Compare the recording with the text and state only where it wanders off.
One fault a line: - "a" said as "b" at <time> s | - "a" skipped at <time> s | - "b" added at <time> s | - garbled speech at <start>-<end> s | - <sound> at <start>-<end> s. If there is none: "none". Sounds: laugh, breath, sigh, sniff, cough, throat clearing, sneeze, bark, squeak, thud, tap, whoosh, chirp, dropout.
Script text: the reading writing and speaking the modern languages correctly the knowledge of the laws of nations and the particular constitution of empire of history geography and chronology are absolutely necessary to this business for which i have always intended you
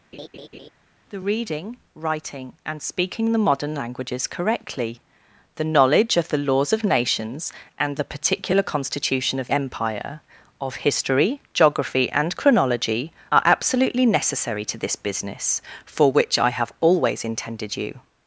- laugh at 0.1-0.7 s